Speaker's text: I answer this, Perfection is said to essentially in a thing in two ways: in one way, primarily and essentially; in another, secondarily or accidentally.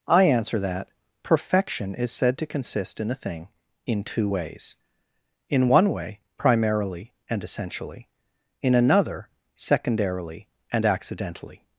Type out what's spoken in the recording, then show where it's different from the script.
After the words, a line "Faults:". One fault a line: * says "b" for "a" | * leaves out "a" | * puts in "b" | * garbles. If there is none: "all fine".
I answer that, Perfection is said to consist in a thing in two ways: in one way, primarily and essentially; in another, secondarily and accidentally.
Faults:
* says "that" for "this"
* says "consist" for "essentially"
* says "and" for "or"